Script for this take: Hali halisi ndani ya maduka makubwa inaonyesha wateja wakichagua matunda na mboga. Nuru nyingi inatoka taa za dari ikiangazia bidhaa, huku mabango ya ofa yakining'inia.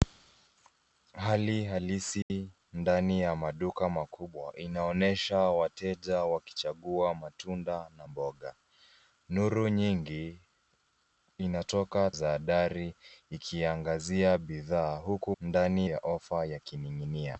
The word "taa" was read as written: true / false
false